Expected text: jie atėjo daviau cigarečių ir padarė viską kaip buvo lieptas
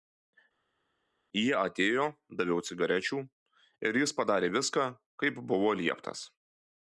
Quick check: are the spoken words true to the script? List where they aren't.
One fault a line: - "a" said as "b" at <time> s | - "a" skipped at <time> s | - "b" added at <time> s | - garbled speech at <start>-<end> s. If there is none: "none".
- "jis" added at 4.0 s